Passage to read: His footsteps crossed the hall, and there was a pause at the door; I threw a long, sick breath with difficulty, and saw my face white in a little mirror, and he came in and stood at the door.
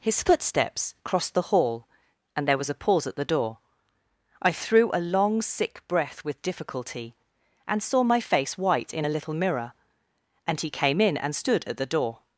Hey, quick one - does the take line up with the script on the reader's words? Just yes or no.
yes